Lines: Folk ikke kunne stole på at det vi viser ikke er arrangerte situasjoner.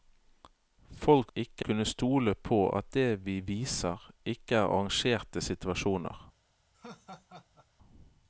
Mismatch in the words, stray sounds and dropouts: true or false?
true